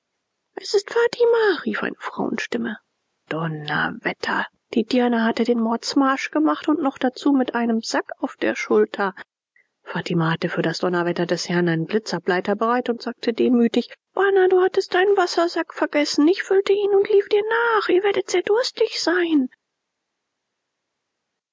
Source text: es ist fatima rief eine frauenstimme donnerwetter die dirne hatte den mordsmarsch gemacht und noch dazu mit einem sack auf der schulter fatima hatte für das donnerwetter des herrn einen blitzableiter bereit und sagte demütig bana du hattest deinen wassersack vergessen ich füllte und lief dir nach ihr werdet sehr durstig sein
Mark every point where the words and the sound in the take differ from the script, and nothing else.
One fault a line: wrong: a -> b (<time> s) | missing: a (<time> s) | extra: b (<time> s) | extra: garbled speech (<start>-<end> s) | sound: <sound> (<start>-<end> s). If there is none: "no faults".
extra: ihn (16.7 s)